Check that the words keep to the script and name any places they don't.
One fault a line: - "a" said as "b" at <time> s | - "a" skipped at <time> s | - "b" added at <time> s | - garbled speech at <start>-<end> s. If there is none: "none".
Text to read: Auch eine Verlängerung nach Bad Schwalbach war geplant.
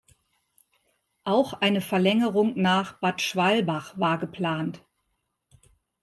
none